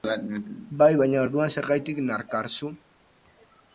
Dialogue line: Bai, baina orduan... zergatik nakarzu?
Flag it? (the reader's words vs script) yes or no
no